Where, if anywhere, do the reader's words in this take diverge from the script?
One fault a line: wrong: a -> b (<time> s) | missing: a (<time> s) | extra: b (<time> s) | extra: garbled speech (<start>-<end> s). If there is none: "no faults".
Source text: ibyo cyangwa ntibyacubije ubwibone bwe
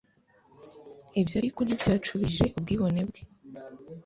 wrong: cyangwa -> ariko (1.4 s)